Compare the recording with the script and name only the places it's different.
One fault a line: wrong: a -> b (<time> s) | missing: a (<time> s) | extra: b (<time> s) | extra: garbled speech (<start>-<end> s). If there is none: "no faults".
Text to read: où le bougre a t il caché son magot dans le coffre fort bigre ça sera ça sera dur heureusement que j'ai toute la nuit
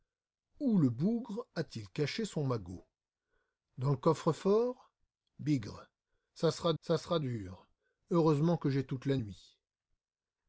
no faults